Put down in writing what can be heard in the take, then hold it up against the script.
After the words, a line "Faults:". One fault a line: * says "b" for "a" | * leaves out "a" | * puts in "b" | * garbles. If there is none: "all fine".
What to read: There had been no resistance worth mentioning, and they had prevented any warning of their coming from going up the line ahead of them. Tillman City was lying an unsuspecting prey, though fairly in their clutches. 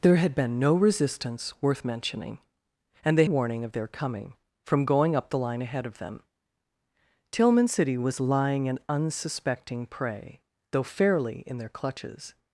There had been no resistance worth mentioning, and they warning of their coming from going up the line ahead of them. Tillman City was lying an unsuspecting prey, though fairly in their clutches.
Faults:
* leaves out "had prevented any"